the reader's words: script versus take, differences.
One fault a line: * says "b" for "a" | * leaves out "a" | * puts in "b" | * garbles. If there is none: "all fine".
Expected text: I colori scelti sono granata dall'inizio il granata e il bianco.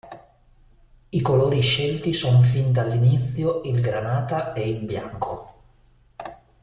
* says "fin" for "granata"